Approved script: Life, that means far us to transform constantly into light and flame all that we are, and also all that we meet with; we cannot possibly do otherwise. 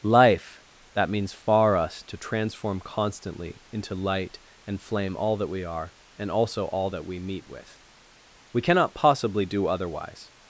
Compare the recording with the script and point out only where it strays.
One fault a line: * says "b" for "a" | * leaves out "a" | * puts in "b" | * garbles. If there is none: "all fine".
all fine